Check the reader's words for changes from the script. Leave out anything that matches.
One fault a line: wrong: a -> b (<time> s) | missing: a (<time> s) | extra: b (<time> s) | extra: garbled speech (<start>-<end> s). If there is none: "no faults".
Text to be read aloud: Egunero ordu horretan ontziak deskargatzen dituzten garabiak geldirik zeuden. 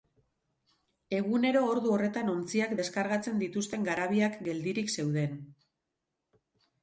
no faults